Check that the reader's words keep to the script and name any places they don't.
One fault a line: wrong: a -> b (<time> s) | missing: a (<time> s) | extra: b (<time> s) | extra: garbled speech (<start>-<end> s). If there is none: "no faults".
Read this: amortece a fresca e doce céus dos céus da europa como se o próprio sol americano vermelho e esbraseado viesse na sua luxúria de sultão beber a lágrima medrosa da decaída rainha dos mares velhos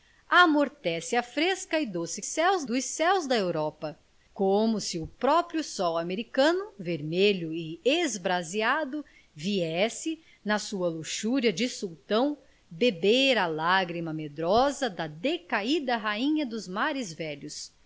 no faults